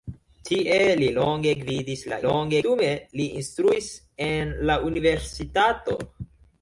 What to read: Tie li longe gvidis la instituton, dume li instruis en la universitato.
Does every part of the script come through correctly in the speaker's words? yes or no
no